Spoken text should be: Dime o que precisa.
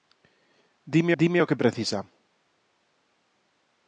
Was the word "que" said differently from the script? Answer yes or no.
no